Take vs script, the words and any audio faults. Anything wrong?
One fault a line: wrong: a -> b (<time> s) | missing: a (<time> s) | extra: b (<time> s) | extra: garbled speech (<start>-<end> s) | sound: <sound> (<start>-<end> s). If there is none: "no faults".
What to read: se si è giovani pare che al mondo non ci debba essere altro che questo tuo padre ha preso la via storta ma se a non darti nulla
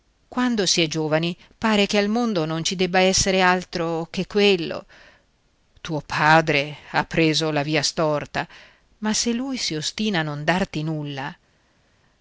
wrong: se -> quando (0.3 s)
wrong: questo -> quello (4.3 s)
extra: lui si ostina (9.3 s)